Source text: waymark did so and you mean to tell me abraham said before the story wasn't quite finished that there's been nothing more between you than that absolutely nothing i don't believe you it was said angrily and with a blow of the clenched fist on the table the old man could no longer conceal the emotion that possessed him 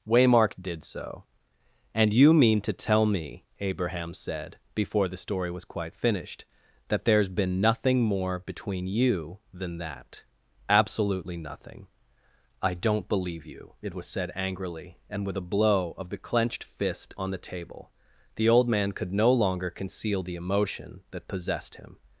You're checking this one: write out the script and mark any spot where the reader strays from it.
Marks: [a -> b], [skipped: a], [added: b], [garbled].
waymark did so and you mean to tell me abraham said before the story [wasn't -> was] quite finished that there's been nothing more between you than that absolutely nothing i don't believe you it was said angrily and with a blow of the clenched fist on the table the old man could no longer conceal the emotion that possessed him